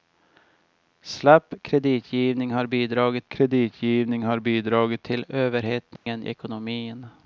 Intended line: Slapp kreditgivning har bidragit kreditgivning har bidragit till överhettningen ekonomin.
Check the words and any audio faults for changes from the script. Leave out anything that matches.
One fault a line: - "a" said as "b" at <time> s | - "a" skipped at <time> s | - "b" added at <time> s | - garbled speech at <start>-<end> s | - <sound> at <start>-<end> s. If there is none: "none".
- dropout at 6.0-6.1 s